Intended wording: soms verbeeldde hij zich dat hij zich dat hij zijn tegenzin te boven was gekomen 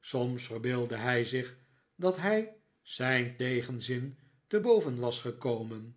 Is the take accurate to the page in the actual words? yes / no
no